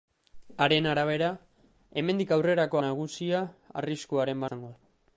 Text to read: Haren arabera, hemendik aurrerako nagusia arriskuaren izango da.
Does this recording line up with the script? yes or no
yes